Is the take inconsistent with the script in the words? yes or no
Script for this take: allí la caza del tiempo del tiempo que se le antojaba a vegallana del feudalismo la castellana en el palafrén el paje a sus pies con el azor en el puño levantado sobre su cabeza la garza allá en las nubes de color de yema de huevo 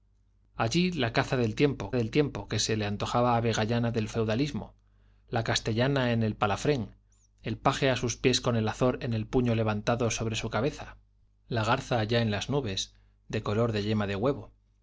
no